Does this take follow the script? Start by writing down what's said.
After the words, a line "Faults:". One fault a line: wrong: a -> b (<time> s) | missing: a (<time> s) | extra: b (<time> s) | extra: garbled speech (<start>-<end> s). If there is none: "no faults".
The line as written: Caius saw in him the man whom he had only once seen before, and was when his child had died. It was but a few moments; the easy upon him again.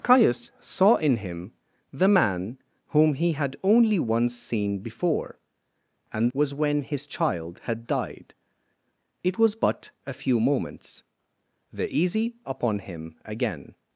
Caius saw in him the man whom he had only once seen before, and was when his child had died. It was but a few moments; the easy upon him again.
Faults:
no faults